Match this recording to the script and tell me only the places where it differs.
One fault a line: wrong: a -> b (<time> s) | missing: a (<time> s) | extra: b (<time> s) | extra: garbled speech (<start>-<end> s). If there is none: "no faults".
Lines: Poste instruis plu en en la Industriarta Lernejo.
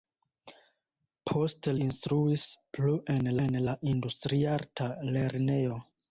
no faults